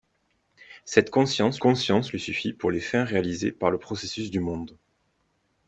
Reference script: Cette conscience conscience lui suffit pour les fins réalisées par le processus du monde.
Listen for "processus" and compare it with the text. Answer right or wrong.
right